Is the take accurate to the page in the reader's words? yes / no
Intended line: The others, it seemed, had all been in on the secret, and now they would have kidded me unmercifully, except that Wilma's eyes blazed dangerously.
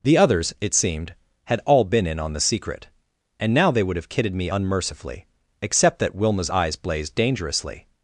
yes